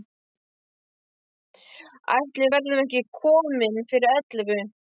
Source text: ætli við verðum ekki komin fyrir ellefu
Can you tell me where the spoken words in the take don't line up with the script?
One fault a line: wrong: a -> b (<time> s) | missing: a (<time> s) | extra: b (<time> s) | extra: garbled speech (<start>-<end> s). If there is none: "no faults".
no faults